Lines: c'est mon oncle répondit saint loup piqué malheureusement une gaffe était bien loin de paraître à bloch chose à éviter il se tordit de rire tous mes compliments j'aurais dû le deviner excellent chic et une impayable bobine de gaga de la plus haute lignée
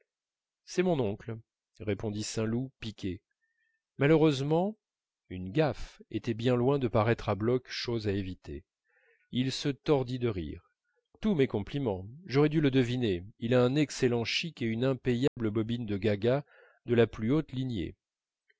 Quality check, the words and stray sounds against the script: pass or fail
fail